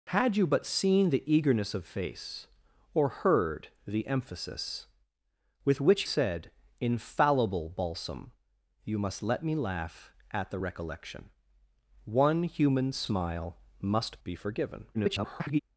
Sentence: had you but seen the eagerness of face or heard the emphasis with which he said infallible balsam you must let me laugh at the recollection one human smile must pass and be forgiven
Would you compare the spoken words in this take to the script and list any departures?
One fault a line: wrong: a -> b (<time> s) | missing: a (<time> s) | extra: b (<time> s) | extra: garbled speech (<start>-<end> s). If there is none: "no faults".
missing: he (6.0 s)
missing: pass and (14.2 s)
extra: garbled speech (14.9-15.6 s)